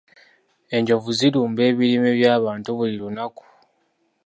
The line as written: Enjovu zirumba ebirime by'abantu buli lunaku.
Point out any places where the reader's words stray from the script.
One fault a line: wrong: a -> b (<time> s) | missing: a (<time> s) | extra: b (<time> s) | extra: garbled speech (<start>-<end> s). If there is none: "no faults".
no faults